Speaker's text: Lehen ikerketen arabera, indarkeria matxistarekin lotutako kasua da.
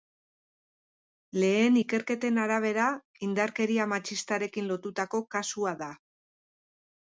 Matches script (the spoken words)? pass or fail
pass